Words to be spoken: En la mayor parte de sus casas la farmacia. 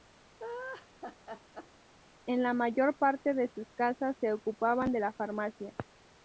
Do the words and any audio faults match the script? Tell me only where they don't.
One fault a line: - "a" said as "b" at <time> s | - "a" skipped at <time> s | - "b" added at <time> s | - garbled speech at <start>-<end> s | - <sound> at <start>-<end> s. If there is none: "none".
- laugh at 0.4-1.7 s
- "se ocupaban de" added at 4.2 s